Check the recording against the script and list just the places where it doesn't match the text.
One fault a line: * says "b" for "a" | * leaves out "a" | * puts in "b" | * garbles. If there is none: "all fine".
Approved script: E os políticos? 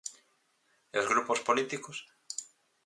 * puts in "grupos"